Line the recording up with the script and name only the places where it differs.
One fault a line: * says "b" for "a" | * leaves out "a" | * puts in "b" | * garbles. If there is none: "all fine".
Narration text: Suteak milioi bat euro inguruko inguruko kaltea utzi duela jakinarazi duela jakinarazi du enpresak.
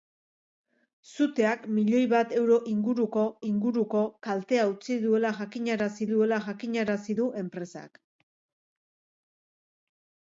all fine